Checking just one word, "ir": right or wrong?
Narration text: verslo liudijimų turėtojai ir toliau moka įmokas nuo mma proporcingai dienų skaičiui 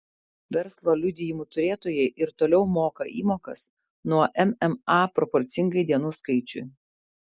right